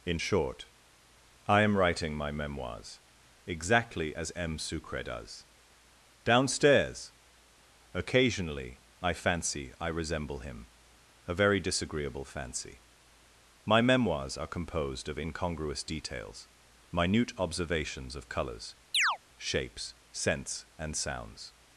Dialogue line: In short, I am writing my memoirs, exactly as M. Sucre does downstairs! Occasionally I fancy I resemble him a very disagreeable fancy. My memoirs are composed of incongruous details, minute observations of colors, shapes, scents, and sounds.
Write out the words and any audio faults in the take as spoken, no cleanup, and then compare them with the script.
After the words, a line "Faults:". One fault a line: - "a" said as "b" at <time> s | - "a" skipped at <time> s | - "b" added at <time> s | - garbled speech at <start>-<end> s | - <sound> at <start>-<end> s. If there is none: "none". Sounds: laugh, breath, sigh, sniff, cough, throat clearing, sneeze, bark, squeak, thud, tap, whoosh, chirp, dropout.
In short, I am writing my memoirs, exactly as M. Sucre does downstairs! Occasionally I fancy I resemble him a very disagreeable fancy. My memoirs are composed of incongruous details, minute observations of colors, shapes, scents, and sounds.
Faults:
- chirp at 18.9-19.2 s